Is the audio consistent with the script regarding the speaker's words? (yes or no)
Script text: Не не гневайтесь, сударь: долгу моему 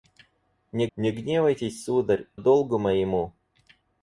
yes